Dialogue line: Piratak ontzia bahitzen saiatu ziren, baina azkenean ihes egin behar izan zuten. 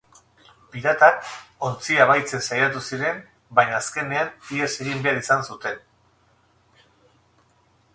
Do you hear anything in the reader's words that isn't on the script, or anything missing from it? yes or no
no